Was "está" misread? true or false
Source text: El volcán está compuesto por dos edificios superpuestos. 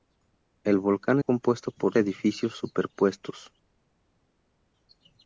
true